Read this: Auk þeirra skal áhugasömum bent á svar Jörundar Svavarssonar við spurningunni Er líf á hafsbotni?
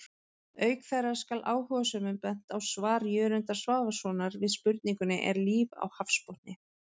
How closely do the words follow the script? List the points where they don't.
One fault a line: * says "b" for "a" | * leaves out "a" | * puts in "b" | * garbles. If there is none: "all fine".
all fine